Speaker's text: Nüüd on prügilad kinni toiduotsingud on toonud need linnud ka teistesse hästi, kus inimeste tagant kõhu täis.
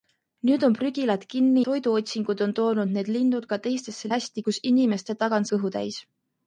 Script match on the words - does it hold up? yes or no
yes